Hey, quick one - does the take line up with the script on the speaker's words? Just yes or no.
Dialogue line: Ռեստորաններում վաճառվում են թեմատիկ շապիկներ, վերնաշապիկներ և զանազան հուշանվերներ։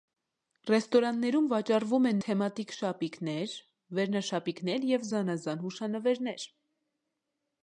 yes